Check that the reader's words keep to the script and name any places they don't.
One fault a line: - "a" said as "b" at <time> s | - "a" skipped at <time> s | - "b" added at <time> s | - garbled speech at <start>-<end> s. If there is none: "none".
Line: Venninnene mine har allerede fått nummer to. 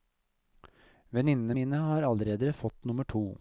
none